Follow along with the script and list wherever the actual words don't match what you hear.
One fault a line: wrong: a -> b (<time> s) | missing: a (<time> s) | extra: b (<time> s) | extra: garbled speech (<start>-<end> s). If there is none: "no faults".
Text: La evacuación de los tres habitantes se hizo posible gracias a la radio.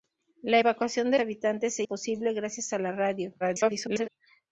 missing: los tres (1.2 s)
missing: hizo (1.8 s)
extra: garbled speech (3.4-4.1 s)